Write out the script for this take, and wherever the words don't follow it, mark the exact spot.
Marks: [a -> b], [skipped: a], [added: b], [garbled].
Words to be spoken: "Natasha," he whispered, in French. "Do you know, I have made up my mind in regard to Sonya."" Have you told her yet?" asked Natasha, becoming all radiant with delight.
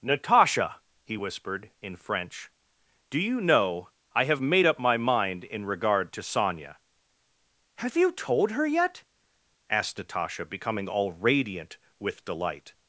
"Natasha," he whispered, in French. "Do you know, I have made up my mind in regard to Sonya."" Have you told her yet?" asked Natasha, becoming all radiant with delight.